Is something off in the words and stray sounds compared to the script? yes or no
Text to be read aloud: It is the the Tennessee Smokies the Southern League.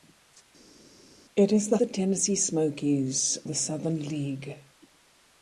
no